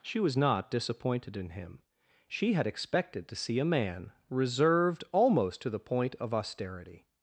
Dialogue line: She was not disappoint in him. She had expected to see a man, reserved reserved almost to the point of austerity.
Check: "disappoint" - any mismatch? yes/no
yes